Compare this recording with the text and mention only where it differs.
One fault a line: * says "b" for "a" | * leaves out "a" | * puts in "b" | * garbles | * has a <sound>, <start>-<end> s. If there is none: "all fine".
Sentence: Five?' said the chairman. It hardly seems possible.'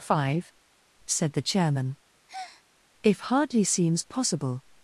* has a breath, 2.3-2.6 s
* says "If" for "It"